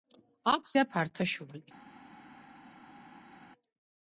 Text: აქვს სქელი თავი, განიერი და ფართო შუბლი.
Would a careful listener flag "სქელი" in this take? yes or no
yes